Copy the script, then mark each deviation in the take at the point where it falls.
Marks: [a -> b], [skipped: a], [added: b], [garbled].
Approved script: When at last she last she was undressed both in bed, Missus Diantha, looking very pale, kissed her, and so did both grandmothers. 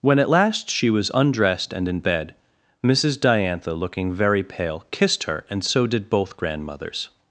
When at last she [skipped: last she] was undressed [both -> and] in bed, Missus Diantha, looking very pale, kissed her, and so did both grandmothers.